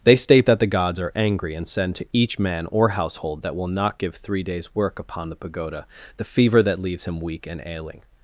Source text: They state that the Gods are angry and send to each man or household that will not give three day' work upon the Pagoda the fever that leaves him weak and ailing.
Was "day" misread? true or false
true